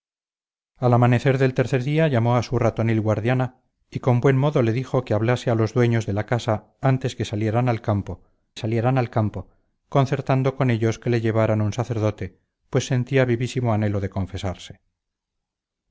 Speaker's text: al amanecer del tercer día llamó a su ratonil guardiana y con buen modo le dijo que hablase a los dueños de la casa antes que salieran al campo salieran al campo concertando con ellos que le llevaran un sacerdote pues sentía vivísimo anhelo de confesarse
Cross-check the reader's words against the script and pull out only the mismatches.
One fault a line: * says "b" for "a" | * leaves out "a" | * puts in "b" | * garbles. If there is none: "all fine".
all fine